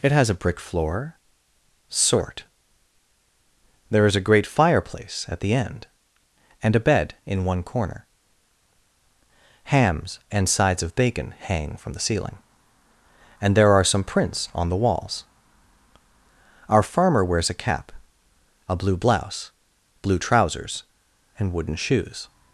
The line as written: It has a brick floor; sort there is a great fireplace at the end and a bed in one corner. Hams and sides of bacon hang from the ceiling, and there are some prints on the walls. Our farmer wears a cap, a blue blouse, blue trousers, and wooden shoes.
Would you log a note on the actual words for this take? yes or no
no